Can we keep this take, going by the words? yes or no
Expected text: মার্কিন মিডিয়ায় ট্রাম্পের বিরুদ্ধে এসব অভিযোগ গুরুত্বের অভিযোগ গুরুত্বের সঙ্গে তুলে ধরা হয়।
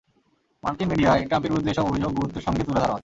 no